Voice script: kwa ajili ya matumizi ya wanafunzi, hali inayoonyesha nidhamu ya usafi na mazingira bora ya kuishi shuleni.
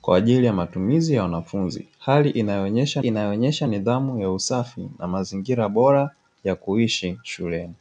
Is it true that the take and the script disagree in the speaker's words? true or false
true